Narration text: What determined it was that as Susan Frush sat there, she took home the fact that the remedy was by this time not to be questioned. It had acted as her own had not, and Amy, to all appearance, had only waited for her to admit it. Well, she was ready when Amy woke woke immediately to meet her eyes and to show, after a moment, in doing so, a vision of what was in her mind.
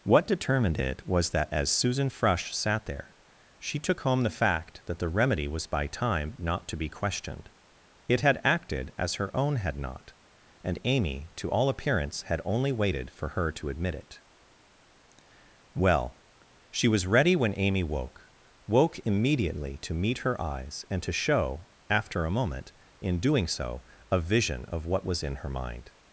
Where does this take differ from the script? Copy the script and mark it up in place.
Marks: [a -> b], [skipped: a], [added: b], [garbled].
What determined it was that as Susan Frush sat there, she took home the fact that the remedy was by [skipped: this] time not to be questioned. It had acted as her own had not, and Amy, to all appearance, had only waited for her to admit it. Well, she was ready when Amy woke woke immediately to meet her eyes and to show, after a moment, in doing so, a vision of what was in her mind.